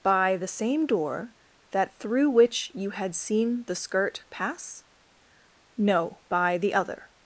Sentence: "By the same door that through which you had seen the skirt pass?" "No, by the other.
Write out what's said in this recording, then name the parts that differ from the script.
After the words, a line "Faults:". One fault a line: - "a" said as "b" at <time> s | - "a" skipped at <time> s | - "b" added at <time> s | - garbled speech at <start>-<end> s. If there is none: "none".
"By the same door that through which you had seen the skirt pass?" "No, by the other.
Faults:
none